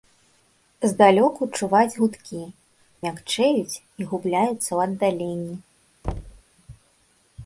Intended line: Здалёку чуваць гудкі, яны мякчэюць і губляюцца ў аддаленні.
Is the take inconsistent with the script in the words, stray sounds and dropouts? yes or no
yes